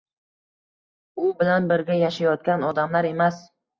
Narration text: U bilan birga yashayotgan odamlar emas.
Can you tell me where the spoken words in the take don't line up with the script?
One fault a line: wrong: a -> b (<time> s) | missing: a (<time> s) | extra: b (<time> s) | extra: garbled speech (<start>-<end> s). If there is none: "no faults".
no faults